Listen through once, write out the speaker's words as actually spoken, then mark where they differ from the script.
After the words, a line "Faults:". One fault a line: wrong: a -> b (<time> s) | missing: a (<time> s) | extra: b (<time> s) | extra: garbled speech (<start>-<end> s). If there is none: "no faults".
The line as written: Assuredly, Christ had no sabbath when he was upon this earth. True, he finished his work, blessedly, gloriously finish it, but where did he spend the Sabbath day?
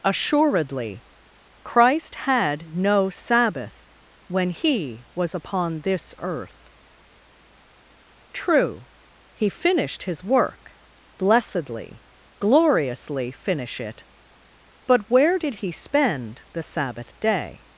Assuredly, Christ had no sabbath when he was upon this earth. True, he finished his work, blessedly, gloriously finish it, but where did he spend the Sabbath day?
Faults:
no faults